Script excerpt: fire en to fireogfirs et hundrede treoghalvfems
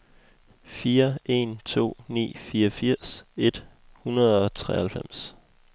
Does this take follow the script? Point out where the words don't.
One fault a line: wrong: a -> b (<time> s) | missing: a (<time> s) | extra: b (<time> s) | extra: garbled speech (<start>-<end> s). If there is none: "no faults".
extra: ni (2.1 s)
extra: og (4.4 s)